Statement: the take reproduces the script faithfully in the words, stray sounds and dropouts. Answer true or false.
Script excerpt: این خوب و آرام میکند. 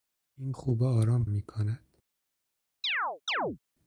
false